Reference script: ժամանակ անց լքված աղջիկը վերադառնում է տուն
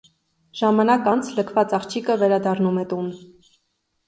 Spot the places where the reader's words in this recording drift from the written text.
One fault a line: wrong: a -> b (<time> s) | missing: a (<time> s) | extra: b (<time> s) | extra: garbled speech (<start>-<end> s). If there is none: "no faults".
no faults